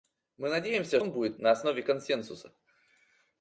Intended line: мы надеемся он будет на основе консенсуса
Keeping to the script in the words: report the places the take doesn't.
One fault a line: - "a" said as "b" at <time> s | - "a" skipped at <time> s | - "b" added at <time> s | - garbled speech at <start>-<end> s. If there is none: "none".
none